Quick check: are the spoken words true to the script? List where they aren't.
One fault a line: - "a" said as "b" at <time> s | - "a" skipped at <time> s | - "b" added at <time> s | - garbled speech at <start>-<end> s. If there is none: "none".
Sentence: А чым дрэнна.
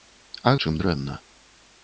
none